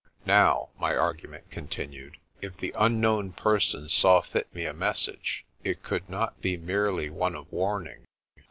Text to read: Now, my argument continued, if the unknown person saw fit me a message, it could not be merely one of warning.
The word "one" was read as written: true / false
true